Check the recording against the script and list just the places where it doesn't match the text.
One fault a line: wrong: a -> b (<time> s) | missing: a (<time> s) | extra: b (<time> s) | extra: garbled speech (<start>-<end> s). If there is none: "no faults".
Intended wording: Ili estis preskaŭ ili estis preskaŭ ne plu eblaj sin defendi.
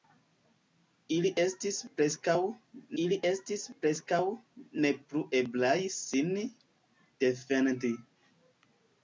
no faults